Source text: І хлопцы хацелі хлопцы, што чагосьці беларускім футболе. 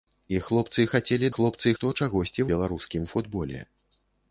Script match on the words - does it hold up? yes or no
yes